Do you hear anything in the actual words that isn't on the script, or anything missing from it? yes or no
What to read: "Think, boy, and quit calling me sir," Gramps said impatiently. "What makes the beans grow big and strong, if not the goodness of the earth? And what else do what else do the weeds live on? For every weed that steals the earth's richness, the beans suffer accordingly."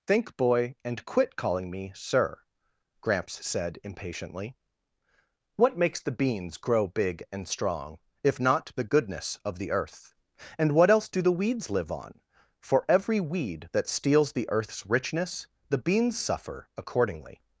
yes